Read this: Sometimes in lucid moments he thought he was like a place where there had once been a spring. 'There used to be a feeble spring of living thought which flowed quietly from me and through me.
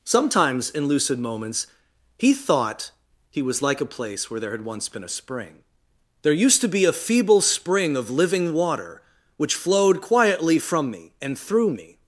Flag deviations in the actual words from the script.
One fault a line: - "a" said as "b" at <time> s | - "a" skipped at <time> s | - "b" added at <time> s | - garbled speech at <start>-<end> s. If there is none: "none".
- "thought" said as "water" at 8.5 s